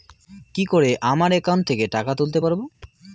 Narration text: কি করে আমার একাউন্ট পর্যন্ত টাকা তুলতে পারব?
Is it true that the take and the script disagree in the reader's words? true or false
true